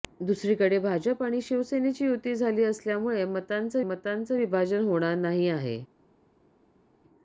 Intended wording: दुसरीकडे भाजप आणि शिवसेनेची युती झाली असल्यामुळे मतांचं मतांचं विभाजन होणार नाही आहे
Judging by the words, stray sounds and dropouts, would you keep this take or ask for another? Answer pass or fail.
pass